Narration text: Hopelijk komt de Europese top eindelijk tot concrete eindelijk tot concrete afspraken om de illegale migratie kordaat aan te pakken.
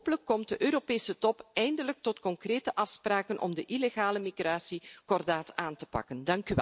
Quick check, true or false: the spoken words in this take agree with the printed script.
false